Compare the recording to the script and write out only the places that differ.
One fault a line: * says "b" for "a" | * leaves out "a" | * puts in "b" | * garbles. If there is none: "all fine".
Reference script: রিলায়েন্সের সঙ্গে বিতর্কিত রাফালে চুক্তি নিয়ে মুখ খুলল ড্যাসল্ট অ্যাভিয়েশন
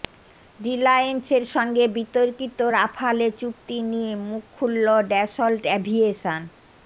all fine